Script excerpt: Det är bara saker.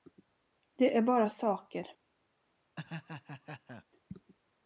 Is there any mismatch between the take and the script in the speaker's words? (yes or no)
no